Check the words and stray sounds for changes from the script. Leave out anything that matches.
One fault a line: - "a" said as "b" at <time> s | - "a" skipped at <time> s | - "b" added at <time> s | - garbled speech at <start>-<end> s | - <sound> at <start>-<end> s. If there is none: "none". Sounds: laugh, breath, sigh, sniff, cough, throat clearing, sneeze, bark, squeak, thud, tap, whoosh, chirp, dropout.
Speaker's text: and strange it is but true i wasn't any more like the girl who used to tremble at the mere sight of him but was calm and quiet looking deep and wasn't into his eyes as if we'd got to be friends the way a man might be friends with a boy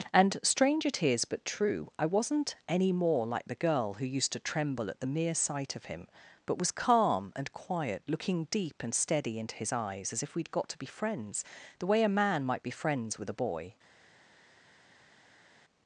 - "wasn't" said as "steady" at 8.9 s